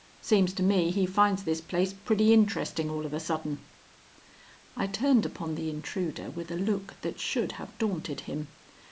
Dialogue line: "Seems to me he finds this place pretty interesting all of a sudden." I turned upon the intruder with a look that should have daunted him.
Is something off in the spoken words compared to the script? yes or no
no